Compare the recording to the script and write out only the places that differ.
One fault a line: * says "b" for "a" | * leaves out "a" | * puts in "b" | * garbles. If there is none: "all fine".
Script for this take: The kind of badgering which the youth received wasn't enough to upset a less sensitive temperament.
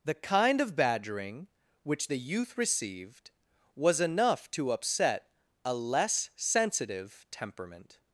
* says "was" for "wasn't"